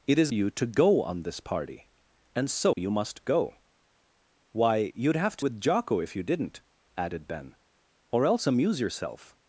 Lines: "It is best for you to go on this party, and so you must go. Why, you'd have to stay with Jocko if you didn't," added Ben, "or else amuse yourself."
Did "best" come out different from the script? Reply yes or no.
yes